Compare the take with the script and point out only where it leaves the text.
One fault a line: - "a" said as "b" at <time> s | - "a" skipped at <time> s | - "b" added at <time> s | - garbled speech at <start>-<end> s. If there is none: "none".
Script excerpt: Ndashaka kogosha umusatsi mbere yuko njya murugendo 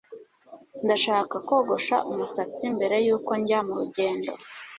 none